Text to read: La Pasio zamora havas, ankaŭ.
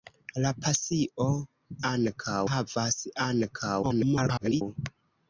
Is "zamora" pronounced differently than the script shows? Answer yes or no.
yes